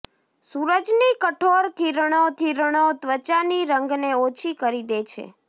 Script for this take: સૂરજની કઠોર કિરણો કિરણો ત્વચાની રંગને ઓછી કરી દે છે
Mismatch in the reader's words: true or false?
false